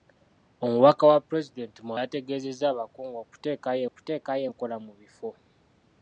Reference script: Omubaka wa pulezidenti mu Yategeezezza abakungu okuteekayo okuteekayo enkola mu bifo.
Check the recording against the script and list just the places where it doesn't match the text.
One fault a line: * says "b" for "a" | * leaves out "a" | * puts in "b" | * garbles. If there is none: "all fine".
all fine